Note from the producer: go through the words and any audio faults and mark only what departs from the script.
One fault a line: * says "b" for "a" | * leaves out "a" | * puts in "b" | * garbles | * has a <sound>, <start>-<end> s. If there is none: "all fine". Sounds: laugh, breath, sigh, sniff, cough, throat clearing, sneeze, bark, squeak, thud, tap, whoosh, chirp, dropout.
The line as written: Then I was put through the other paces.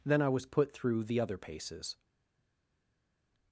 all fine